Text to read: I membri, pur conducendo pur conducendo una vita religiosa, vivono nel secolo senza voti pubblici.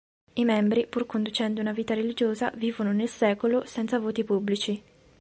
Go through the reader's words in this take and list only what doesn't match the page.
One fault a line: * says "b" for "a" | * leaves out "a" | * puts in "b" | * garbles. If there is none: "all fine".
* leaves out "pur conducendo"